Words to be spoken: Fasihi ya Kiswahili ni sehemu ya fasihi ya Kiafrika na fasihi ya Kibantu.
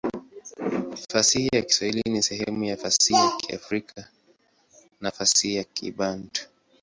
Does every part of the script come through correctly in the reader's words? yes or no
yes